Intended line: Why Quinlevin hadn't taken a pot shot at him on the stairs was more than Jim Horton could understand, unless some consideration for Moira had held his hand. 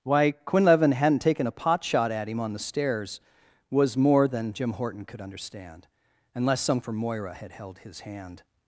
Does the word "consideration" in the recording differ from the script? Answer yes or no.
yes